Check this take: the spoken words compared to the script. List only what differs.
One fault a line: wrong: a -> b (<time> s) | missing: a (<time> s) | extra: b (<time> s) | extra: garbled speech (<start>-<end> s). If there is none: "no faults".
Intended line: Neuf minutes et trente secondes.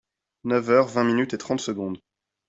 extra: heures vingt (0.7 s)